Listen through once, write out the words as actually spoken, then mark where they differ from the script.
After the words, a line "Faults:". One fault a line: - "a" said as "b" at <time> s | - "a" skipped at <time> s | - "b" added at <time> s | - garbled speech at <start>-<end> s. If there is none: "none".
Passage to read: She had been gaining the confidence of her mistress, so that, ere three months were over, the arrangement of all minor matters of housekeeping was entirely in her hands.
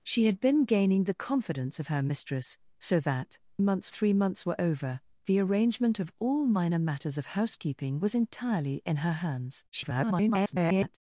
She had been gaining the confidence of her mistress, so that, months three months were over, the arrangement of all minor matters of housekeeping was entirely in her hands. [garbled]
Faults:
- "ere" said as "months" at 3.6 s
- garbled speech at 9.7-11.0 s